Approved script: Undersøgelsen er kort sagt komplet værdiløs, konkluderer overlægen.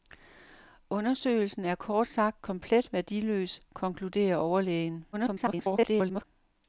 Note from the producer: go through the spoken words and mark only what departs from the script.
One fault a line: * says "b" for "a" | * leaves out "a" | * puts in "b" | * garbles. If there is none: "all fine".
* garbles